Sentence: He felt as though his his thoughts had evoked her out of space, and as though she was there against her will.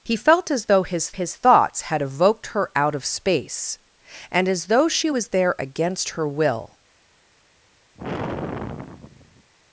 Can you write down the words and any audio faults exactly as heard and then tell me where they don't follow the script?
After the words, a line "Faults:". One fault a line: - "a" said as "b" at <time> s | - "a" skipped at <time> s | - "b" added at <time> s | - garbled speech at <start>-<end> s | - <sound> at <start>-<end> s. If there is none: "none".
He felt as though his his thoughts had evoked her out of space, and as though she was there against her will.
Faults:
- sigh at 8.0-9.5 s